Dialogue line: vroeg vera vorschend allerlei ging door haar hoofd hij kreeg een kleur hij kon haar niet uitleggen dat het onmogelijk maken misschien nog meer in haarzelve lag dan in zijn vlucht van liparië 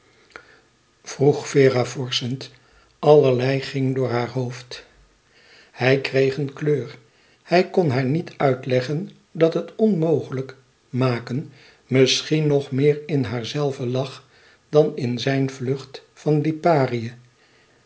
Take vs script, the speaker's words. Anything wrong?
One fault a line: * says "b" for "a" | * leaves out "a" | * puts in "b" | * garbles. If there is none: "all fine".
all fine